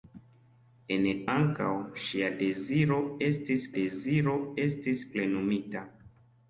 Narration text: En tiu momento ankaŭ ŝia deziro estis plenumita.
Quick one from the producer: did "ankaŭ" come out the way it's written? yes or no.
no